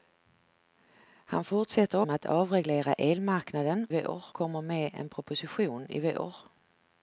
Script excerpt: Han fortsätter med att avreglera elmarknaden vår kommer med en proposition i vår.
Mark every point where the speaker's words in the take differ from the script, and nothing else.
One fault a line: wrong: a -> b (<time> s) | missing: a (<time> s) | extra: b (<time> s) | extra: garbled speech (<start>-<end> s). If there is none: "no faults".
no faults